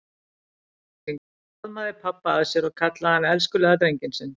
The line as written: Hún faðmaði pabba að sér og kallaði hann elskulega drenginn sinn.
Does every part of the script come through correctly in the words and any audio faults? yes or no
yes